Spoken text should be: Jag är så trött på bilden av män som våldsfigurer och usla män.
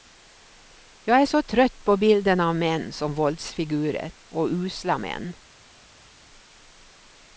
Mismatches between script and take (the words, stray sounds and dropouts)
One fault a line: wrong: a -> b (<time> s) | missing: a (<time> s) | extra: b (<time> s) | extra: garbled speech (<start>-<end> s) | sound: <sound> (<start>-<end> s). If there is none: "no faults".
no faults